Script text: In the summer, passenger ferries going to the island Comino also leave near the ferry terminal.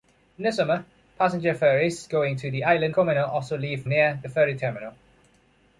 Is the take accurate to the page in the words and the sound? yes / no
yes